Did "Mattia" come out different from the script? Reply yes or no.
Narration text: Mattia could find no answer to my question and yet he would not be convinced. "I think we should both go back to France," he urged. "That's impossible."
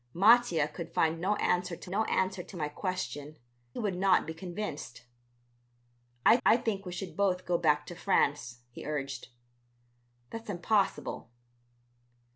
no